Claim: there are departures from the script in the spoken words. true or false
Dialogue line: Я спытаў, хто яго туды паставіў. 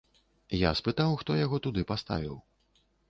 false